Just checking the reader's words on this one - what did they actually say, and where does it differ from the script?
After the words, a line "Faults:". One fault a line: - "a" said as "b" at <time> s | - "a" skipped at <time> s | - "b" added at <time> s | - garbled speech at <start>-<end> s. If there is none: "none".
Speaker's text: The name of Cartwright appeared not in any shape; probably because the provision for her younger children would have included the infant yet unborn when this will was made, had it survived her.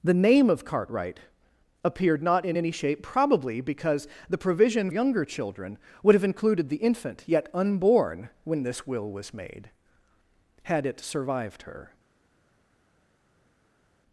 The name of Cartwright appeared not in any shape; probably because the provision younger children would have included the infant yet unborn when this will was made, had it survived her.
Faults:
- "for her" skipped at 4.9 s